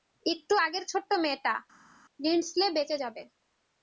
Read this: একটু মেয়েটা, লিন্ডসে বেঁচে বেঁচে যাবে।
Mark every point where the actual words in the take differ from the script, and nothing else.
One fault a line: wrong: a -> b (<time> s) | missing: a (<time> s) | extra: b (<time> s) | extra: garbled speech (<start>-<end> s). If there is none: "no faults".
extra: আগের ছোট্ট (0.7 s)
missing: বেঁচে (3.0 s)